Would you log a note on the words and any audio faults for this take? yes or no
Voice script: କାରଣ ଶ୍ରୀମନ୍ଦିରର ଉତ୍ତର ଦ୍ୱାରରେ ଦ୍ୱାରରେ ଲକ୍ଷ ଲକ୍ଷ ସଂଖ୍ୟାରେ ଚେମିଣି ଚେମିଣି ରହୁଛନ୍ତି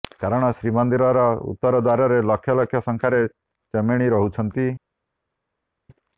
yes